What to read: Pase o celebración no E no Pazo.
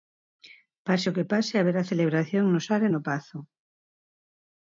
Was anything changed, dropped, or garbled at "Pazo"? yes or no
no